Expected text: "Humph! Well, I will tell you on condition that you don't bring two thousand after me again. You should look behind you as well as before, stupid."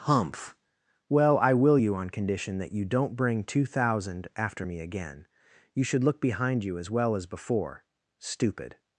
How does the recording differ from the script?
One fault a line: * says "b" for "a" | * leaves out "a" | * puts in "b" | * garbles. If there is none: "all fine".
* leaves out "tell"